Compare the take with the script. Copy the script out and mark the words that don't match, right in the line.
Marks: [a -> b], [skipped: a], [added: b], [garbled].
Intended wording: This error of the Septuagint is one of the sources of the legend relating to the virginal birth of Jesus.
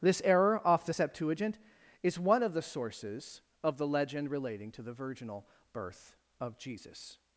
This error [of -> off] the Septuagint is one of the sources of the legend relating to the virginal birth of Jesus.